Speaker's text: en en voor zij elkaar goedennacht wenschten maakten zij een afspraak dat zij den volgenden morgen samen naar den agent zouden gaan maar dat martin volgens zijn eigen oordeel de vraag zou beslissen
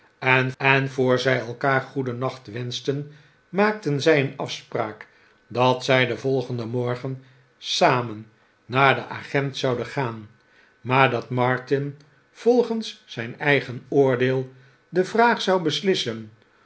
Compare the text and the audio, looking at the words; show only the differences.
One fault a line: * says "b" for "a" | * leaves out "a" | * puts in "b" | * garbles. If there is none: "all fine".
all fine